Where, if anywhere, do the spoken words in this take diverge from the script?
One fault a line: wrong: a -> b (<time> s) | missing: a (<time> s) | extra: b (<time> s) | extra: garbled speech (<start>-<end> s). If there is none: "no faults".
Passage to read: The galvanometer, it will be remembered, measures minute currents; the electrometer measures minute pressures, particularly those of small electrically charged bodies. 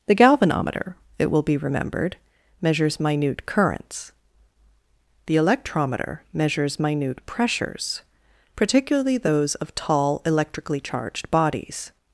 wrong: small -> tall (9.8 s)